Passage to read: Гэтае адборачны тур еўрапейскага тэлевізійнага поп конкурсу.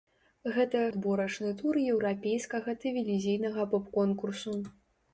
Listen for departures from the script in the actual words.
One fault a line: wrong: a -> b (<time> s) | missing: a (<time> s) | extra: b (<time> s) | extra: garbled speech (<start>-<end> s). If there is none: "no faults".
no faults